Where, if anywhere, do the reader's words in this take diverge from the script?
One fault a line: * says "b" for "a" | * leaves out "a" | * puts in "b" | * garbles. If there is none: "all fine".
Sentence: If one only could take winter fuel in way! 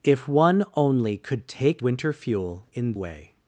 all fine